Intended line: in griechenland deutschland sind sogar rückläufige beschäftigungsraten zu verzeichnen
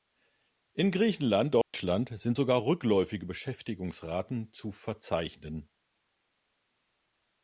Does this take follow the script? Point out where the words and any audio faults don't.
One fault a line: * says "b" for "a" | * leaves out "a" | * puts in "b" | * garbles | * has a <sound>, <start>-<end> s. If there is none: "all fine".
* has a dropout, 1.6-1.7 s